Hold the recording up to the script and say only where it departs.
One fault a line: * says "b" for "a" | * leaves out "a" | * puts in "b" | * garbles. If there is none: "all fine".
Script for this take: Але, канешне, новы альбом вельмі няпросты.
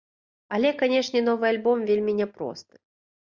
all fine